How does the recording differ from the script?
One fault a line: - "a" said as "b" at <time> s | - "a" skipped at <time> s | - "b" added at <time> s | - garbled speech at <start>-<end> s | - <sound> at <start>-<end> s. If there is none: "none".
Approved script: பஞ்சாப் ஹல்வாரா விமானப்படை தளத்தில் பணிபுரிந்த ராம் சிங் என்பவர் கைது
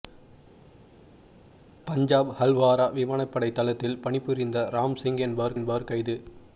- "என்பவர்" added at 5.5 s